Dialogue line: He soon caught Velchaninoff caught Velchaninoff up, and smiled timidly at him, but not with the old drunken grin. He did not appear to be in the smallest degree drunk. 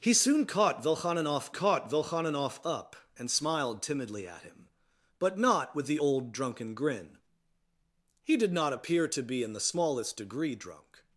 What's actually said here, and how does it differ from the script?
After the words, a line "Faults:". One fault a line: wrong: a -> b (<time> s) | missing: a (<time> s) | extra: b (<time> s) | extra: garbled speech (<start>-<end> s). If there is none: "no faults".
He soon caught Velchaninoff caught Velchaninoff up, and smiled timidly at him, but not with the old drunken grin. He did not appear to be in the smallest degree drunk.
Faults:
no faults